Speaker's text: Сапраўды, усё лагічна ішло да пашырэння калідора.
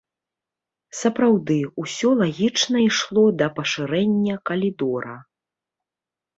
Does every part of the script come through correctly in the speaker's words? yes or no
yes